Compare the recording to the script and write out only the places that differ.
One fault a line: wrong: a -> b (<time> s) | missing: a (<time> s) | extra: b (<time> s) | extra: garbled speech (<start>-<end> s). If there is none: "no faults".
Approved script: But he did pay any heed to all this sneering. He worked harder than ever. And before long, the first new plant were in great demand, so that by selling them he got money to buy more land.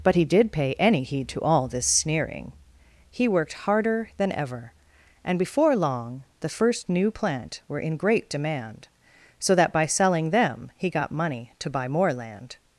no faults